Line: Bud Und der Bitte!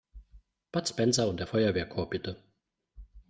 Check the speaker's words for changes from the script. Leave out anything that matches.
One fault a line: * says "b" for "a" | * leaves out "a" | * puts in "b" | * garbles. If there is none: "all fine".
* puts in "Spencer"
* puts in "Feuerwehrchor"